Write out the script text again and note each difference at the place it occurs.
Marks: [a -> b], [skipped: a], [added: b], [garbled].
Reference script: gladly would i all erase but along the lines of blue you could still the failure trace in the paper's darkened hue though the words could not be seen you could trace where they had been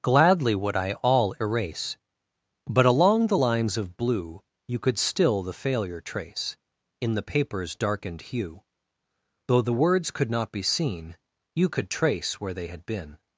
gladly would i all erase but along the lines of blue you could still the failure trace in the paper's darkened hue though the words could not be seen you could trace where they had been